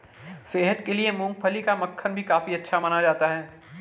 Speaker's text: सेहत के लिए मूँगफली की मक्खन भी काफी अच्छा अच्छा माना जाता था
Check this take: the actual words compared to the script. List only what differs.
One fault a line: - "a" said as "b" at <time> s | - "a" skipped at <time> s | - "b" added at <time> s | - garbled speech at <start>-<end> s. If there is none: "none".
- "की" said as "का" at 1.6 s
- "अच्छा" skipped at 2.8 s
- "था" said as "है" at 3.3 s